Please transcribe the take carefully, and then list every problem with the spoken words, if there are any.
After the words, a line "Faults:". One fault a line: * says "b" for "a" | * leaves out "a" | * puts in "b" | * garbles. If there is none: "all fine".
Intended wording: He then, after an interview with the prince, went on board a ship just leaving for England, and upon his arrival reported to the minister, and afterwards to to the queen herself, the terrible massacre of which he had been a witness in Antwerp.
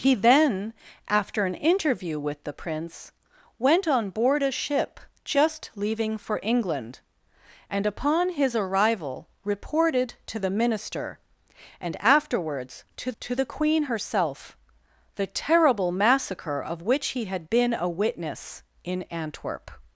He then, after an interview with the prince, went on board a ship just leaving for England, and upon his arrival reported to the minister, and afterwards to to the queen herself, the terrible massacre of which he had been a witness in Antwerp.
Faults:
all fine